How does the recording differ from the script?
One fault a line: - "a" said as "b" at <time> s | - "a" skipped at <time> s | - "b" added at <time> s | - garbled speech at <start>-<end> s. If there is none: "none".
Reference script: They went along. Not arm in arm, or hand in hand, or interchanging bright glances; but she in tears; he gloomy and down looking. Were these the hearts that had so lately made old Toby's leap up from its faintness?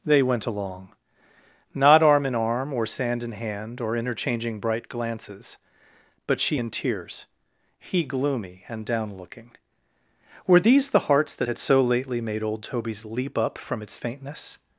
- "hand" said as "sand" at 2.9 s